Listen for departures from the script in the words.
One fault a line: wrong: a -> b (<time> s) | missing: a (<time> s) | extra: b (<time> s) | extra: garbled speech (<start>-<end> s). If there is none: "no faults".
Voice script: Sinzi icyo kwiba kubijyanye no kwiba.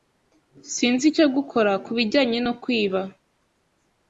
wrong: kwiba -> gukora (1.3 s)